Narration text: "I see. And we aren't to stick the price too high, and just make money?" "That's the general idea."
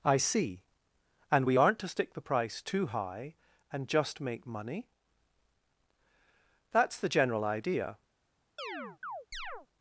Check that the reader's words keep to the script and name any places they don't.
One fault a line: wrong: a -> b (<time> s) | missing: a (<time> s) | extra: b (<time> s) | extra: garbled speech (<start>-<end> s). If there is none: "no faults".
no faults